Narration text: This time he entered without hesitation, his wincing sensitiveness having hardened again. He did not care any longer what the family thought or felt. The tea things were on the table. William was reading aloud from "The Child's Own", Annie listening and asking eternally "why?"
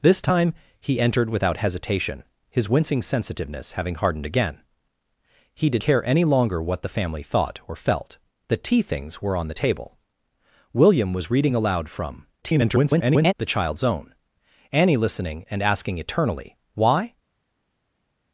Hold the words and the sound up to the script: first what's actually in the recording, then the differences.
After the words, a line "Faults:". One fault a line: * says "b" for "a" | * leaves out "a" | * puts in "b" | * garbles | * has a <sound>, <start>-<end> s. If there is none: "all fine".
This time he entered without hesitation, his wincing sensitiveness having hardened again. He did care any longer what the family thought or felt. The tea things were on the table. William was reading aloud from [garbled] "The Child's Own", Annie listening and asking eternally "why?"
Faults:
* leaves out "not"
* garbles